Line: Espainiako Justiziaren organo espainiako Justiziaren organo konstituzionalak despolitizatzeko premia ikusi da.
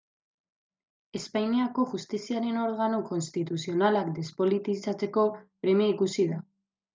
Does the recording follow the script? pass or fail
fail